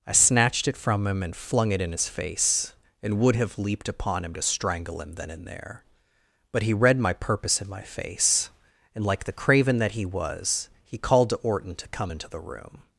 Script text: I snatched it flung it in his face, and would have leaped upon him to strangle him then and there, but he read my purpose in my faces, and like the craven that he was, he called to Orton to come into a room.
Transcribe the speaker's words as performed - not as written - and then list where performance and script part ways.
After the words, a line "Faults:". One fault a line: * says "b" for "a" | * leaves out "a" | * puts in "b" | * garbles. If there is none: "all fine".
I snatched it from him and flung it in his face, and would have leaped upon him to strangle him then and there, but he read my purpose in my face, and like the craven that he was, he called to Orton to come into the room.
Faults:
* puts in "from him and"
* says "face" for "faces"
* says "the" for "a"